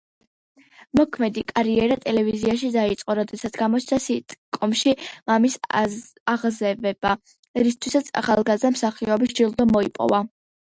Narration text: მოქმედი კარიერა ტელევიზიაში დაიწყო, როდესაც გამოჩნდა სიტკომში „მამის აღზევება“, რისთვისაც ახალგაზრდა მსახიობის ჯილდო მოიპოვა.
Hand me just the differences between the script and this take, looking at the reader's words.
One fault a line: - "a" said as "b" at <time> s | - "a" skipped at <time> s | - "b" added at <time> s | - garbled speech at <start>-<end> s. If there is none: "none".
none